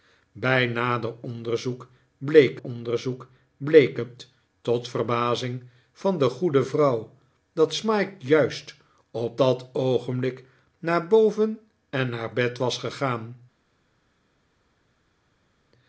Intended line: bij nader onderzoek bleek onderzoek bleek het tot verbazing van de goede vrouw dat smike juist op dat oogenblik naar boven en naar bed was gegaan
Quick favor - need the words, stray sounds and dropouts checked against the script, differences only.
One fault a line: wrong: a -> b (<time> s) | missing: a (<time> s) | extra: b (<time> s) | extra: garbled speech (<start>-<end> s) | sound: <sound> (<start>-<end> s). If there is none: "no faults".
no faults